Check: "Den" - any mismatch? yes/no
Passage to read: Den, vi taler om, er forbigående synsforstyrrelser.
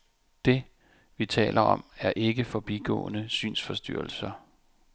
yes